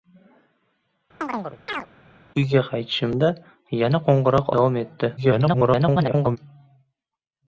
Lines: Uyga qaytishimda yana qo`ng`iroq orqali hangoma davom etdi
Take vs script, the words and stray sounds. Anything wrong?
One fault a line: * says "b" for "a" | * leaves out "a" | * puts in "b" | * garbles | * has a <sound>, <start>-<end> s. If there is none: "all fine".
* has a chirp, 1.2-1.9 s
* leaves out "orqali hangoma"
* garbles